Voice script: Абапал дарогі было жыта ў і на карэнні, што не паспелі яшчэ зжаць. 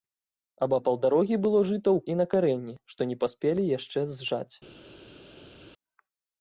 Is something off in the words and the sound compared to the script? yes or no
no